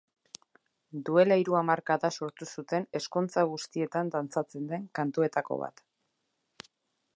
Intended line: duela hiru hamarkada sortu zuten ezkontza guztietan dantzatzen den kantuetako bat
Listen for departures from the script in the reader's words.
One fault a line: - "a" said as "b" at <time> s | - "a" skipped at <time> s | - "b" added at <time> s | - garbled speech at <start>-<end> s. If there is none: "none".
none